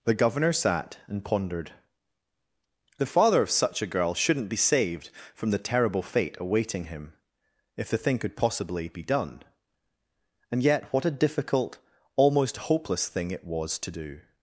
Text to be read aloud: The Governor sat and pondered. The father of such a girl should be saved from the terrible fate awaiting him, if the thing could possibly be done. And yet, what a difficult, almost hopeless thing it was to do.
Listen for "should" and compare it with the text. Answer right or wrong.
wrong